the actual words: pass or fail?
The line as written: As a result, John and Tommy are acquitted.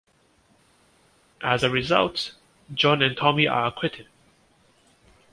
pass